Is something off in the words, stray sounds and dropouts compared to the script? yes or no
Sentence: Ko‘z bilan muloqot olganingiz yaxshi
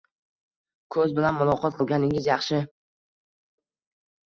no